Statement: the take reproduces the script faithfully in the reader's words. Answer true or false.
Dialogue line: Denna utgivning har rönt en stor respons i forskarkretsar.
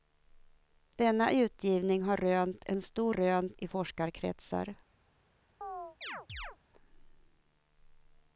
false